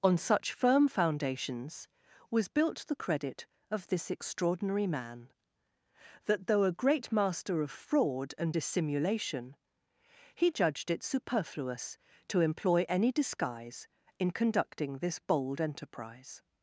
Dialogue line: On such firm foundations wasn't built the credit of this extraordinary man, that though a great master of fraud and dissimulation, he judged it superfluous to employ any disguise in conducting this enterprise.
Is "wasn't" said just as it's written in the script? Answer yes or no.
no